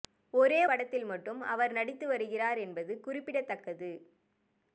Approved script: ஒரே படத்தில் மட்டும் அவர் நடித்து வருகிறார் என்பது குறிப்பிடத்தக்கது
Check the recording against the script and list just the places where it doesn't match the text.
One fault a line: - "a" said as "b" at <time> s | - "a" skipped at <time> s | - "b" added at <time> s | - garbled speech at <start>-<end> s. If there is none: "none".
none